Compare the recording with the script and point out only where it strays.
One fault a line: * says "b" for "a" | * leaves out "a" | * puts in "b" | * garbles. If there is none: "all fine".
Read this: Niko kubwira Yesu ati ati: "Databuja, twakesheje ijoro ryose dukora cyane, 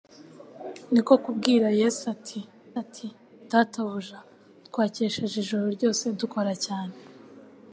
all fine